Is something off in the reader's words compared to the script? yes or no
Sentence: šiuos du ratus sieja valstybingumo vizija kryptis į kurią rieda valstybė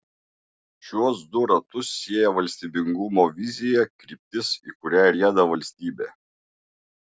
no